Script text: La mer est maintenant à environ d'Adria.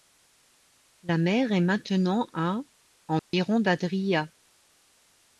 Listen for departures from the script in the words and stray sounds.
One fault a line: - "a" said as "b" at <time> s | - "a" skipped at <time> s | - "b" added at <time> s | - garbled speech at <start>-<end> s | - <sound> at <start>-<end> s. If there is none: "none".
- dropout at 3.2-3.3 s